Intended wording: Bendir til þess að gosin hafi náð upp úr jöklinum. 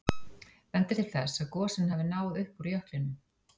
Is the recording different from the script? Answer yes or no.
no